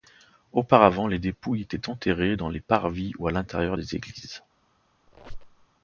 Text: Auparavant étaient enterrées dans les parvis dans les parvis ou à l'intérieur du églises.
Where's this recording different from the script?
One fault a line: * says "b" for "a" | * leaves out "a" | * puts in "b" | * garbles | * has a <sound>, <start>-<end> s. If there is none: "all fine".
* puts in "les dépouilles"
* leaves out "dans les parvis"
* says "des" for "du"
* has a squeak, 5.1-5.7 s